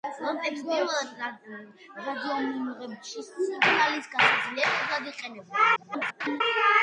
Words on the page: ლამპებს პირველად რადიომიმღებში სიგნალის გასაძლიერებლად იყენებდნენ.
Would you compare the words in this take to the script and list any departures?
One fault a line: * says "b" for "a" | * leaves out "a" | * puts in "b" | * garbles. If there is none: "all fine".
* garbles